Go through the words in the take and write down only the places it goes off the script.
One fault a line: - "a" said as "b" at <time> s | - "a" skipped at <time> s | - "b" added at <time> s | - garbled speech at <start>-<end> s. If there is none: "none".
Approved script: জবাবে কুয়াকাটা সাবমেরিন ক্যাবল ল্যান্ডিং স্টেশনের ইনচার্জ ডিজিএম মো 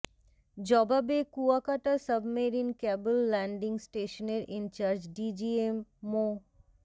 none